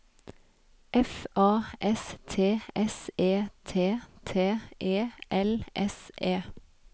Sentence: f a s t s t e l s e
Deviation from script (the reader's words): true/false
true